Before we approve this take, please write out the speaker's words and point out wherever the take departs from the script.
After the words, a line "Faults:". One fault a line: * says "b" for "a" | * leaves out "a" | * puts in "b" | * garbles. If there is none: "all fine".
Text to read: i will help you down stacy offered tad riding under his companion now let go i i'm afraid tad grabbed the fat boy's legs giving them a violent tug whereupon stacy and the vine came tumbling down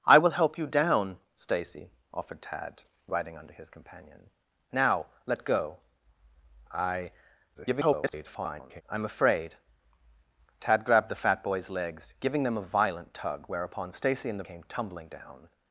i will help you down stacy offered tad riding under his companion now let go i [garbled] i'm afraid tad grabbed the fat boy's legs giving them a violent tug whereupon stacy and the came tumbling down
Faults:
* garbles
* leaves out "vine"